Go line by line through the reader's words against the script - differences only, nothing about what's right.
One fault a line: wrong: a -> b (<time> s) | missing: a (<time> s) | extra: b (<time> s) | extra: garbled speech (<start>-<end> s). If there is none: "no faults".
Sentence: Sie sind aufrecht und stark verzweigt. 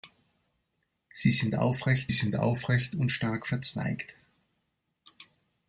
extra: sind aufrecht (2.1 s)